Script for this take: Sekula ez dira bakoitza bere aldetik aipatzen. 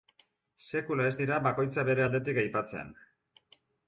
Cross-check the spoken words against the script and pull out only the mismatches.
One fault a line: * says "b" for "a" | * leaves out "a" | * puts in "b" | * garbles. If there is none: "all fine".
all fine